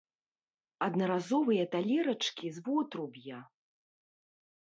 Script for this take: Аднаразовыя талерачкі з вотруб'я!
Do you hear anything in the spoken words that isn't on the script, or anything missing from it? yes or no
no